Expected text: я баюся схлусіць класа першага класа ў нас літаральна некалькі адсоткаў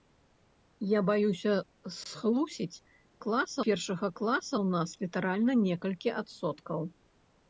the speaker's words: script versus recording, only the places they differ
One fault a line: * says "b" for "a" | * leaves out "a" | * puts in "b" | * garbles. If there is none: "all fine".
all fine